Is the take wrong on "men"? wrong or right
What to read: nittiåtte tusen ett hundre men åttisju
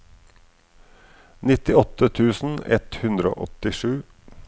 wrong